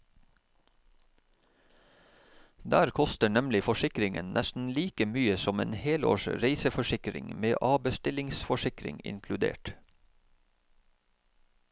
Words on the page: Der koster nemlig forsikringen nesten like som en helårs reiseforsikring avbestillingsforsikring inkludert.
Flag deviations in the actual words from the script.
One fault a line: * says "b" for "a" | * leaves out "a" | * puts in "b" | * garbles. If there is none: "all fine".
* puts in "mye"
* puts in "med"